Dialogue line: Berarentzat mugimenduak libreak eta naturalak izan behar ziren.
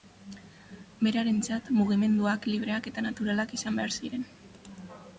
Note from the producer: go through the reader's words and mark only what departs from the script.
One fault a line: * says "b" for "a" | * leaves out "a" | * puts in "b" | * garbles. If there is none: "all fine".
all fine